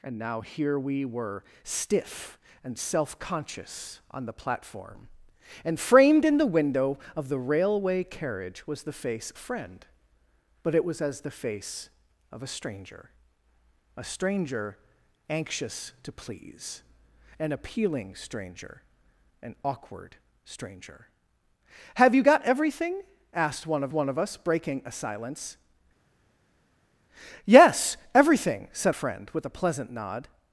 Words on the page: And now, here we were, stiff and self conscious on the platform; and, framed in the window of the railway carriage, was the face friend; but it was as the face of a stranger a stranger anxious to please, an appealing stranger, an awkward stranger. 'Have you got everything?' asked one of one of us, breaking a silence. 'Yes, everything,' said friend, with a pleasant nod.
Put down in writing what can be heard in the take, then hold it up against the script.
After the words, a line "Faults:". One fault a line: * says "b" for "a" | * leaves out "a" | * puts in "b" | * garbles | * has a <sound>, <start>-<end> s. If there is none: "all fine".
And now, here we were, stiff and self conscious on the platform; and, framed in the window of the railway carriage, was the face friend; but it was as the face of a stranger a stranger anxious to please, an appealing stranger, an awkward stranger. 'Have you got everything?' asked one of one of us, breaking a silence. 'Yes, everything,' said friend, with a pleasant nod.
Faults:
all fine